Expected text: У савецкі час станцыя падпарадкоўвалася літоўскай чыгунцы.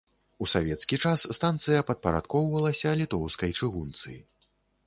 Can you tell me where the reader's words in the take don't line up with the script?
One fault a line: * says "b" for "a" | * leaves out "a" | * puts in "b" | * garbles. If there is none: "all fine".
all fine